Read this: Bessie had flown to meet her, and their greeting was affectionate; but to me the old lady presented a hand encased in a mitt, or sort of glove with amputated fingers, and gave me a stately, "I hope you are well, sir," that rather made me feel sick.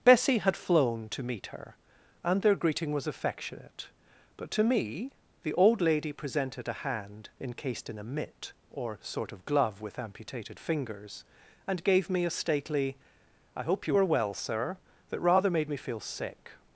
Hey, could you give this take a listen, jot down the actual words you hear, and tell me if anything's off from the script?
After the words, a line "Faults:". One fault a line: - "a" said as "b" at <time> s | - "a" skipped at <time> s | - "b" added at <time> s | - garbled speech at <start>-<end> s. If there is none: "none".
Bessie had flown to meet her, and their greeting was affectionate; but to me the old lady presented a hand encased in a mitt, or sort of glove with amputated fingers, and gave me a stately, "I hope you are well, sir," that rather made me feel sick.
Faults:
none